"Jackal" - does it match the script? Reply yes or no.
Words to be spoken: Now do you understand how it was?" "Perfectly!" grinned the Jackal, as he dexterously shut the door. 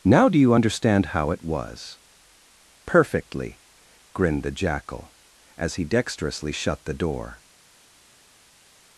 yes